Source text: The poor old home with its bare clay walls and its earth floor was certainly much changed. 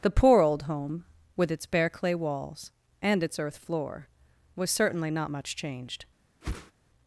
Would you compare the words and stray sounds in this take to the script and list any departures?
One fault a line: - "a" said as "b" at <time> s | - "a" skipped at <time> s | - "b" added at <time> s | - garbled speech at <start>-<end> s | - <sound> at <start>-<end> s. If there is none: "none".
- "not" added at 5.1 s
- whoosh at 6.4-6.7 s